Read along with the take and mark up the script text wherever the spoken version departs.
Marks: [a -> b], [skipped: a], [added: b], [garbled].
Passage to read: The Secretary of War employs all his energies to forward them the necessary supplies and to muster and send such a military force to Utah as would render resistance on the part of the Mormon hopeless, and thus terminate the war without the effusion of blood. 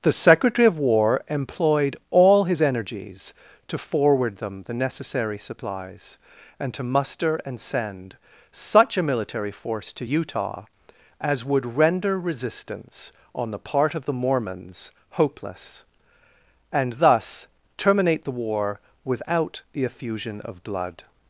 The Secretary of War [employs -> employed] all his energies to forward them the necessary supplies and to muster and send such a military force to Utah as would render resistance on the part of the [Mormon -> Mormons] hopeless, and thus terminate the war without the effusion of blood.